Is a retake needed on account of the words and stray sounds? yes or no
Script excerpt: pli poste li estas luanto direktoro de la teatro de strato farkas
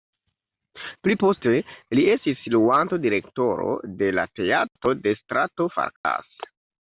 yes